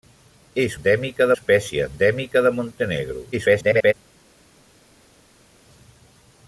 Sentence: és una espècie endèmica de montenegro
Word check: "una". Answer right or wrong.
wrong